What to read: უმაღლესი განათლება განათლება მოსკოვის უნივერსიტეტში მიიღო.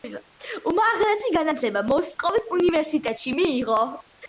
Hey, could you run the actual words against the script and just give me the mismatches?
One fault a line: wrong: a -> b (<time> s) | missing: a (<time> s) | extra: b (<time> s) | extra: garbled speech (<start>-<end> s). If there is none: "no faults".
missing: განათლება (1.9 s)